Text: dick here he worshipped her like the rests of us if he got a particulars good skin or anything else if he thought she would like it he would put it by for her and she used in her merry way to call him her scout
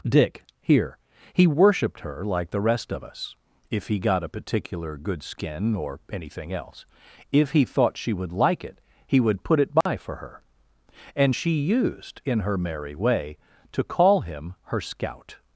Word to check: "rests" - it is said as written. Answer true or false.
false